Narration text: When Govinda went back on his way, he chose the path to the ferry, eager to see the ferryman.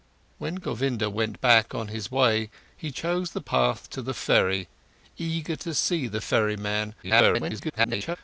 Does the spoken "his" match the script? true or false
true